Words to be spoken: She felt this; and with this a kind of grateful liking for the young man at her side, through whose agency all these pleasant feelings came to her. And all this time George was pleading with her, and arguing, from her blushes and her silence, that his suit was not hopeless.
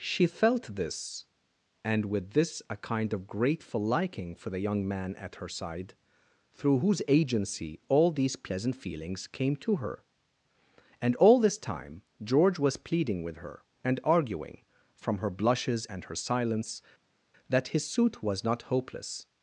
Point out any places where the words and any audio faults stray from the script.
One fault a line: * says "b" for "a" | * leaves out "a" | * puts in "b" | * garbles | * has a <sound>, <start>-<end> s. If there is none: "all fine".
all fine